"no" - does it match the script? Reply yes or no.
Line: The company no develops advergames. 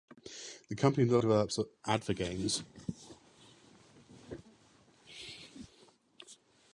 yes